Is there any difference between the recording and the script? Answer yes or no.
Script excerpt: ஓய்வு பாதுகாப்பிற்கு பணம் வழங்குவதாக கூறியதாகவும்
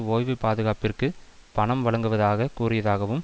no